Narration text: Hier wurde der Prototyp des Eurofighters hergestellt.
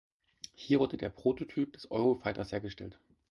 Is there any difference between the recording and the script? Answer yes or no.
no